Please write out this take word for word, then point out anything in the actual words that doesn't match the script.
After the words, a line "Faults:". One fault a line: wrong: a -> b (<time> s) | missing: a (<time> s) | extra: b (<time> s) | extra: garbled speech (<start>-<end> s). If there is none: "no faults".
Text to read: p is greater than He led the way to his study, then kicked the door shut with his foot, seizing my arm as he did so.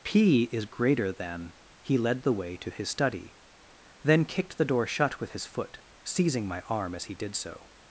p is greater than He led the way to his study, then kicked the door shut with his foot, seizing my arm as he did so.
Faults:
no faults